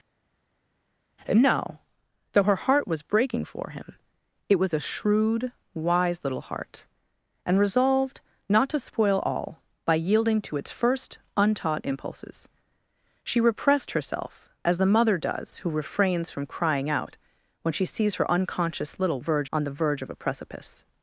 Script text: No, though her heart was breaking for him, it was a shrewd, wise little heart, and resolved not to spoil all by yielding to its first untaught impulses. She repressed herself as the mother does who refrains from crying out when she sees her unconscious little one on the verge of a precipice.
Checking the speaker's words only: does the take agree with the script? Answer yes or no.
no